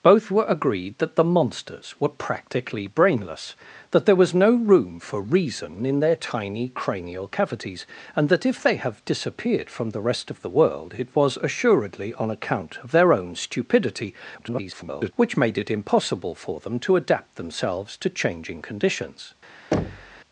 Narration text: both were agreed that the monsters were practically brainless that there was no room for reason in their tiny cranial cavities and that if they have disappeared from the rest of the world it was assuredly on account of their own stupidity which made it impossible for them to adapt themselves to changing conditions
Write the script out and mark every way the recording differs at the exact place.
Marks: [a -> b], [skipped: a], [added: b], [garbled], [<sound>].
both were agreed that the monsters were practically brainless that there was no room for reason in their tiny cranial cavities and that if they have disappeared from the rest of the world it was assuredly on account of their own stupidity [garbled] which made it impossible for them to adapt themselves to changing conditions [thud]